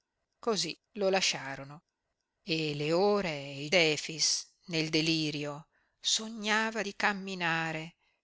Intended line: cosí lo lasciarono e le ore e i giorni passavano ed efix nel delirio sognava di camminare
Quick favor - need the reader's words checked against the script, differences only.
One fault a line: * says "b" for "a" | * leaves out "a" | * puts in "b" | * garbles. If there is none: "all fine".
* leaves out "giorni passavano ed"